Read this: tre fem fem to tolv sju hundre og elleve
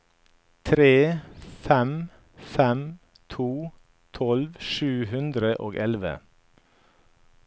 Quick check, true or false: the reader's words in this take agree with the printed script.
true